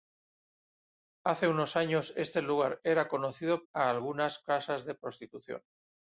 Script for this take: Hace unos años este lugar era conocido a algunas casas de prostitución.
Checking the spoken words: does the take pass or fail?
pass